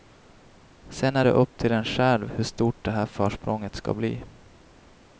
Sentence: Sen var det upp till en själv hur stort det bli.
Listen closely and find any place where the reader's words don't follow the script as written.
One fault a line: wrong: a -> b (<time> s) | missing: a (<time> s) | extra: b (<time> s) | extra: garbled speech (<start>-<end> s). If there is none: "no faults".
wrong: var -> är (1.1 s)
extra: här försprånget ska (2.9 s)